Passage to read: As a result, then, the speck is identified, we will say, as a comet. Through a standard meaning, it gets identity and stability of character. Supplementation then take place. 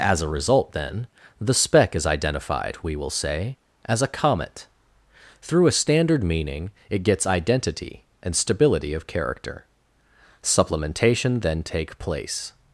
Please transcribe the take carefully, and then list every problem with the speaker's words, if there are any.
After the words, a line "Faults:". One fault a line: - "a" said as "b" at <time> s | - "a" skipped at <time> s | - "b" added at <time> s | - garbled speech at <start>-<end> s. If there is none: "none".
As a result, then, the speck is identified, we will say, as a comet. Through a standard meaning, it gets identity and stability of character. Supplementation then take place.
Faults:
none